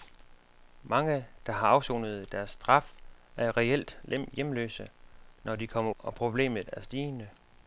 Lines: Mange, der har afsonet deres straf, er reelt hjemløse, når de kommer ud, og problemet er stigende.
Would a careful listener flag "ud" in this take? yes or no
yes